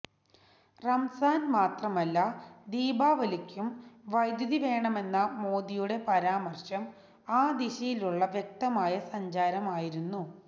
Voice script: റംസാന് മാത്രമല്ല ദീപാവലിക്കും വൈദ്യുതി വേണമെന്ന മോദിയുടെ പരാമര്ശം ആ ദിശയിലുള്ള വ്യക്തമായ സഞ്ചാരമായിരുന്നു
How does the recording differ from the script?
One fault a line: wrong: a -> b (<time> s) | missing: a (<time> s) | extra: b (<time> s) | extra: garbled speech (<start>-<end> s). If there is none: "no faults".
no faults